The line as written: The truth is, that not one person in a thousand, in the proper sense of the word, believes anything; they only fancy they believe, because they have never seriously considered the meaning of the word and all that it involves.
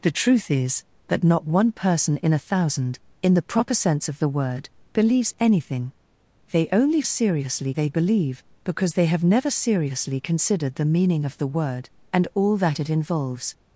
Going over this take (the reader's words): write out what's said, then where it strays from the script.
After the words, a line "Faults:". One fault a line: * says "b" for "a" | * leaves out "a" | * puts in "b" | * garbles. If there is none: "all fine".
The truth is, that not one person in a thousand, in the proper sense of the word, believes anything; they only seriously they believe, because they have never seriously considered the meaning of the word and all that it involves.
Faults:
* says "seriously" for "fancy"